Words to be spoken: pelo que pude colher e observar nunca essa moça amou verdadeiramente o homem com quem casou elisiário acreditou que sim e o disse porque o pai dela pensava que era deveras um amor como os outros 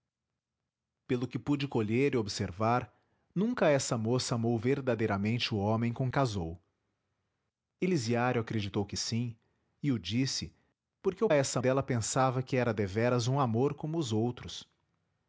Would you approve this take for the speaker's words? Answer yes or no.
no